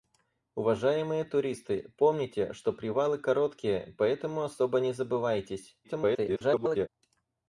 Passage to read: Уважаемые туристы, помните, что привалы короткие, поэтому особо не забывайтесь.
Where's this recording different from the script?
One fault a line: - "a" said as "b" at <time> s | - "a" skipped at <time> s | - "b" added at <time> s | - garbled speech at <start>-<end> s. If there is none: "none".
- garbled speech at 5.8-6.9 s